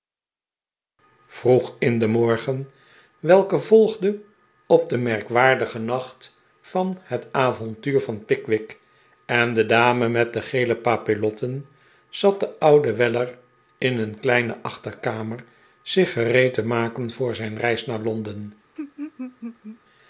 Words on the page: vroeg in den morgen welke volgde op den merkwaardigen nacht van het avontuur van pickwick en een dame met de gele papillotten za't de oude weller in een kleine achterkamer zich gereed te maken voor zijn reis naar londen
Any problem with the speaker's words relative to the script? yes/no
yes